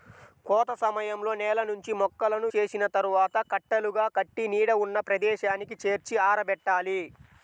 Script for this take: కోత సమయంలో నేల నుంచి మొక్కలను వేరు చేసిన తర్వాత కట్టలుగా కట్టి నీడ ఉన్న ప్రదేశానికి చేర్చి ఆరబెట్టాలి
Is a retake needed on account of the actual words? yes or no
yes